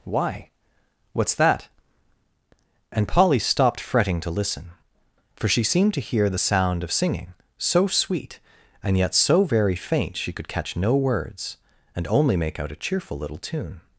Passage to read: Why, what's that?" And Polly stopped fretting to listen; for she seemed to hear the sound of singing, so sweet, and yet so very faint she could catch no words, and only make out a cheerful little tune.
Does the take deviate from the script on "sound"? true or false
false